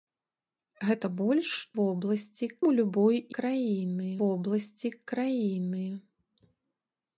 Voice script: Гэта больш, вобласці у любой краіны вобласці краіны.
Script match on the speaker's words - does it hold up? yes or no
yes